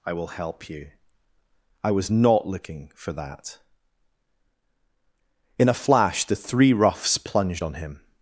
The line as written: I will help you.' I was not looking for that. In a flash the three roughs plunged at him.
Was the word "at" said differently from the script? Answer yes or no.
yes